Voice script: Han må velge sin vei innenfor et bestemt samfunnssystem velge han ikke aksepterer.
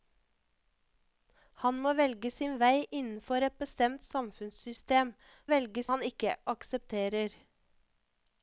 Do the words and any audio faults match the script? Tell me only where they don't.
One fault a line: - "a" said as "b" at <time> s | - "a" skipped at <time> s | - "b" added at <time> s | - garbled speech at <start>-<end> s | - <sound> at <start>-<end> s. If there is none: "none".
none